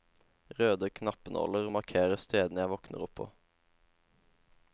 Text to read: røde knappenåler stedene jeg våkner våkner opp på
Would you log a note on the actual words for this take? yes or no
yes